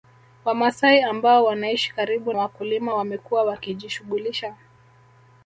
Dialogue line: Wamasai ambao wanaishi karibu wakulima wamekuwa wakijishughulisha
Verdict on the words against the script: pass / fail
pass